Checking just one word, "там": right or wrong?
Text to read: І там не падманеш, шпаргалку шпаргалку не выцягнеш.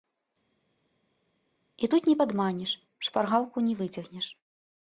wrong